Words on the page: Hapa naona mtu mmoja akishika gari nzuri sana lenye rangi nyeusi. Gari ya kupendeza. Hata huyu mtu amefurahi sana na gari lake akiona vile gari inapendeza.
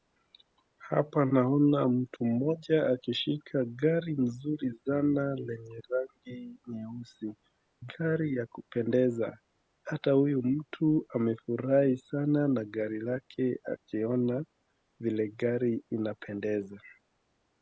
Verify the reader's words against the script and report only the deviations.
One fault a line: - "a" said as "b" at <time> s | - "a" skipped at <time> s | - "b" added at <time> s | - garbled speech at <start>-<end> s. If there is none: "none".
none